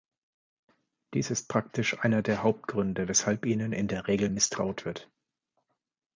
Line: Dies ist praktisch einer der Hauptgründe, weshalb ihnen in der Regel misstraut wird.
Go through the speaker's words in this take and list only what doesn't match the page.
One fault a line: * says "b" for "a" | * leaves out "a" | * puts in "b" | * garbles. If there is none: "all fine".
all fine